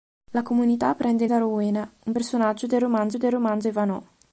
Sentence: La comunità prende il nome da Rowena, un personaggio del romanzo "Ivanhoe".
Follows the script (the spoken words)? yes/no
no